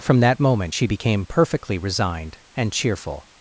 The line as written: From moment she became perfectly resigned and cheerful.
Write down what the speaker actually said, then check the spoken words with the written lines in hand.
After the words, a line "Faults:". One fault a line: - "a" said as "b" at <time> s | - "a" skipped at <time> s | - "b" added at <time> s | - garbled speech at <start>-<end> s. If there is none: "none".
From that moment she became perfectly resigned and cheerful.
Faults:
- "that" added at 0.2 s